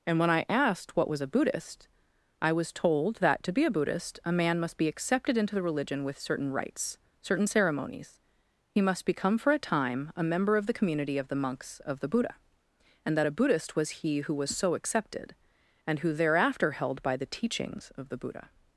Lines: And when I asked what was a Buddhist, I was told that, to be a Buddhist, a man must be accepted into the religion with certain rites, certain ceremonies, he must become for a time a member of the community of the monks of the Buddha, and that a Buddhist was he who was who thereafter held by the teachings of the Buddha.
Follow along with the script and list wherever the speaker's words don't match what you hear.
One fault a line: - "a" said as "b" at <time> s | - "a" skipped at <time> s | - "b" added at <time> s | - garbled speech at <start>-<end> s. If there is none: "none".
- "so accepted and" added at 14.6 s